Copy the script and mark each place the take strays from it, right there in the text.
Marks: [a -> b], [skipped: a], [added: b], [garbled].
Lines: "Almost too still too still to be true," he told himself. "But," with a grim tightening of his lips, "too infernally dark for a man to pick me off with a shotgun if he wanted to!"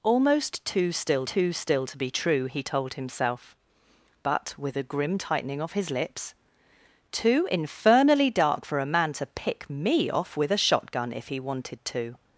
"Almost too still too still to be true," he told himself. "But," with a grim tightening of his lips, "too infernally dark for a man to pick me off with a shotgun if he wanted to!"